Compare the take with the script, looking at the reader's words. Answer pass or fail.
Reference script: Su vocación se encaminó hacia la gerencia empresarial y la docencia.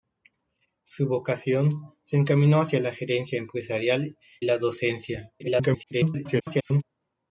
fail